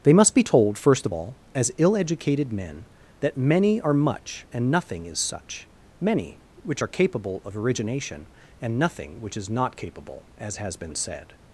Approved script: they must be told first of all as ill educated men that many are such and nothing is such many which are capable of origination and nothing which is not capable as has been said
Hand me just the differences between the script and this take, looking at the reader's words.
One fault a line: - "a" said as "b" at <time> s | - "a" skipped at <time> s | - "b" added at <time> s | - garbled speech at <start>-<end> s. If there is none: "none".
- "such" said as "much" at 3.9 s